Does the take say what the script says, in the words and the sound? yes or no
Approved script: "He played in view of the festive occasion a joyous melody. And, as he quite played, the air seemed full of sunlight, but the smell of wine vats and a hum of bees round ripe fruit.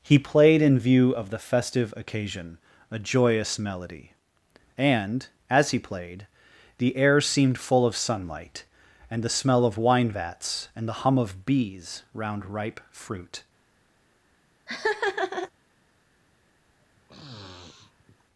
no